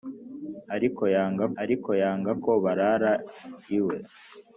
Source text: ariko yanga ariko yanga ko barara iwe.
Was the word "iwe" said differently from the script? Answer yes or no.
no